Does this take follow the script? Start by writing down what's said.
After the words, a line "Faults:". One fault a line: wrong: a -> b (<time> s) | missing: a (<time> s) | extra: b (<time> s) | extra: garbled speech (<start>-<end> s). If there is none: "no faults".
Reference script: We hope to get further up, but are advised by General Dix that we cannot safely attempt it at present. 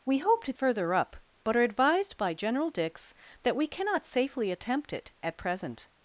We hope to further up, but are advised by General Dix that we cannot safely attempt it at present.
Faults:
missing: get (0.5 s)